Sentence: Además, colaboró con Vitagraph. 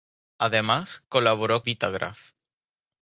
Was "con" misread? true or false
true